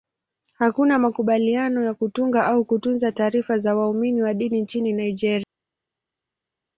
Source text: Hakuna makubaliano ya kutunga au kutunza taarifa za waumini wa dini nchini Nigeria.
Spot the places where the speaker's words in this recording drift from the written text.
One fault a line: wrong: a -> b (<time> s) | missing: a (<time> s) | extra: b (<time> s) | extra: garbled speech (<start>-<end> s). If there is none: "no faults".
no faults